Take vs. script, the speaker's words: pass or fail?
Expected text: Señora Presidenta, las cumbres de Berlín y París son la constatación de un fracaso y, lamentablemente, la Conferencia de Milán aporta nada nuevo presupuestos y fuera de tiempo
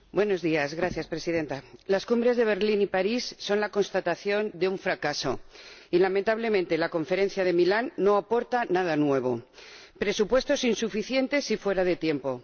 fail